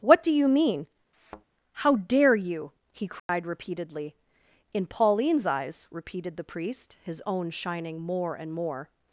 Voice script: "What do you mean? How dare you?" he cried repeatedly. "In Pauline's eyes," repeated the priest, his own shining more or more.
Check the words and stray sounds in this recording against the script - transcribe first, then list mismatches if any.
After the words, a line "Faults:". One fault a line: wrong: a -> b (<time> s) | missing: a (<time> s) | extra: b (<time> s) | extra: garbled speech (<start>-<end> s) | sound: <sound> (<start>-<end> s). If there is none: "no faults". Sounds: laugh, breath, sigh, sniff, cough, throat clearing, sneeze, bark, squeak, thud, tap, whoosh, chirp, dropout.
"What do you mean? How dare you?" he cried repeatedly. "In Pauline's eyes," repeated the priest, his own shining more and more.
Faults:
sound: thud (1.1-1.4 s)
sound: dropout (3.2-3.3 s)
wrong: or -> and (8.4 s)